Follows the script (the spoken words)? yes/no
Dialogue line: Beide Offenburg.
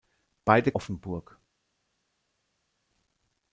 yes